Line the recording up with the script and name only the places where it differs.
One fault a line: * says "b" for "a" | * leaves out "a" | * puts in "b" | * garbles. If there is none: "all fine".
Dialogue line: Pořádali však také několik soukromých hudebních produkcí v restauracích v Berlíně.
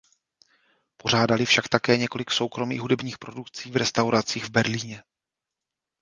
all fine